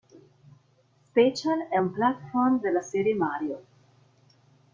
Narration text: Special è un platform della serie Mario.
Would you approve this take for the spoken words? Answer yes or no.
yes